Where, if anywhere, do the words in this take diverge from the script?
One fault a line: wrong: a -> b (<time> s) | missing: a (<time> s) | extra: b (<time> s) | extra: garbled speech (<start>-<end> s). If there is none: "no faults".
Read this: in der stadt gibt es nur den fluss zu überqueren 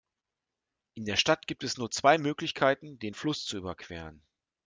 extra: zwei möglichkeiten (1.9 s)